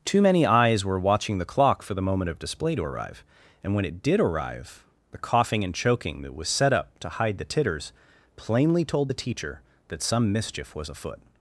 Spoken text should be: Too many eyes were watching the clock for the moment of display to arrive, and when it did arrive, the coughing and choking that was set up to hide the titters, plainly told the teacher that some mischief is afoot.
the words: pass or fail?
fail